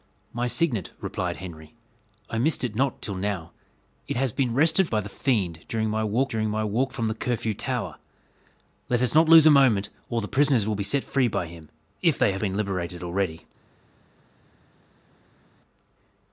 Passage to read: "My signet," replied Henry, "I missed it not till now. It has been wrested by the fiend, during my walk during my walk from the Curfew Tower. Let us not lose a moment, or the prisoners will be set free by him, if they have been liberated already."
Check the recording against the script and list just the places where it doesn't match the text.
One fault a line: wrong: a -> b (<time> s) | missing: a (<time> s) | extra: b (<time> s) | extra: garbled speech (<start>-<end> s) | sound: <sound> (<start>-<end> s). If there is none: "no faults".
no faults